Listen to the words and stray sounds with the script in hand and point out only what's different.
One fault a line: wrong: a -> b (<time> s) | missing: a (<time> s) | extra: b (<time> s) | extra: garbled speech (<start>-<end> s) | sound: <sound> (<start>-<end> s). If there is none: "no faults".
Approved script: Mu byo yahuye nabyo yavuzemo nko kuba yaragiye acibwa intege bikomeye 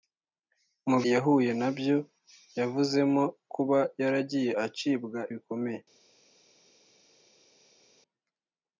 missing: byo (1.0 s)
missing: nko (3.2 s)
missing: intege (5.2 s)